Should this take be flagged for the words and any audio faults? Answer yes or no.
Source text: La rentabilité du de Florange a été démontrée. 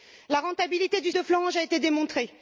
no